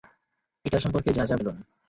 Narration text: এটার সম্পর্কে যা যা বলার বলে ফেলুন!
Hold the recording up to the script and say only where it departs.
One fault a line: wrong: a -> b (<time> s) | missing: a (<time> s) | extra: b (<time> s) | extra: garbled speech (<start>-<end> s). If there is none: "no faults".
missing: বলার বলে (1.4 s)